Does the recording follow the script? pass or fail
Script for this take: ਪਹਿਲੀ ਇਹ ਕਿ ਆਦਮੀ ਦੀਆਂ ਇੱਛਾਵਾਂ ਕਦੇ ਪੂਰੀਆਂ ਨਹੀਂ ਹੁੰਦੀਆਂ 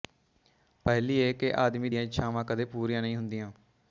pass